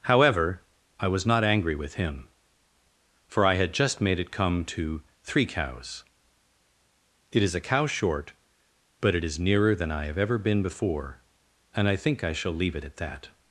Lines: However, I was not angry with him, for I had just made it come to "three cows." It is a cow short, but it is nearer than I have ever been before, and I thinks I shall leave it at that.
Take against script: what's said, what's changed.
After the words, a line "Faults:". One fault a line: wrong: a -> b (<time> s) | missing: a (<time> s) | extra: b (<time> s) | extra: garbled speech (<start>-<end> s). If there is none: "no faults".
However, I was not angry with him, for I had just made it come to "three cows." It is a cow short, but it is nearer than I have ever been before, and I think I shall leave it at that.
Faults:
wrong: thinks -> think (11.9 s)